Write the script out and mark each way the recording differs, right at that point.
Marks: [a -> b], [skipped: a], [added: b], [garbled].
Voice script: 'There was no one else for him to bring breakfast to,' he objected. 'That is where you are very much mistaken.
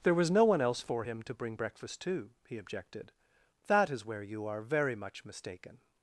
'There was no one else for him to bring breakfast to,' he objected. 'That is where you are very much mistaken.